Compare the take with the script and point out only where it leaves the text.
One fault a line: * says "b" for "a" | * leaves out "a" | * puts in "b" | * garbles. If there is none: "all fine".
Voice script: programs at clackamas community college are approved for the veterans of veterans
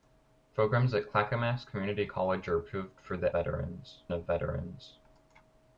all fine